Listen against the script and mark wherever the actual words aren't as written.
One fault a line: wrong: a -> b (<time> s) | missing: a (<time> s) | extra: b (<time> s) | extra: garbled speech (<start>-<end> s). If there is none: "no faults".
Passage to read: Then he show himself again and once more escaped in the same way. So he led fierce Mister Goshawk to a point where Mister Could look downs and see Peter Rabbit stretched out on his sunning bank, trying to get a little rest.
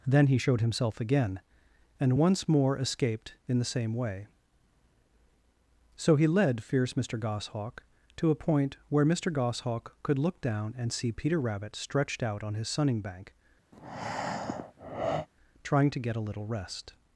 wrong: show -> showed (0.4 s)
extra: Goshawk (9.3 s)
wrong: downs -> down (10.4 s)